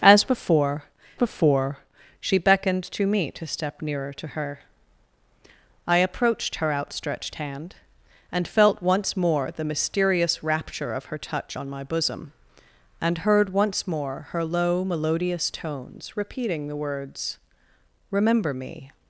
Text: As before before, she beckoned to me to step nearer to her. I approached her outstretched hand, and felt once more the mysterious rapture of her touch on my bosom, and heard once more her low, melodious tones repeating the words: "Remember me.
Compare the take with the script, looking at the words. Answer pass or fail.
pass